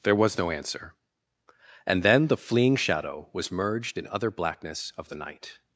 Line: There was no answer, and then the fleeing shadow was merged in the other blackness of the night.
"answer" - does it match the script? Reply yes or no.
yes